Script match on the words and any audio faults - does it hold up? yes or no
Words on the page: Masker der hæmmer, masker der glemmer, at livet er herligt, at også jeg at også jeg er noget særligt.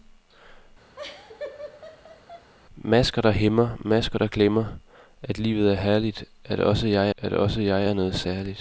no